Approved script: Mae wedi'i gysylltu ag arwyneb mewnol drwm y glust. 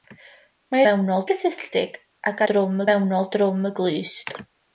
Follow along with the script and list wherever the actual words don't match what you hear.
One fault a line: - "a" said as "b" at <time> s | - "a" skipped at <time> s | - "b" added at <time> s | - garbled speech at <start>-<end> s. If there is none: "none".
- "wedi'i" said as "mewnol" at 0.9 s
- "arwyneb" said as "drwm" at 2.5 s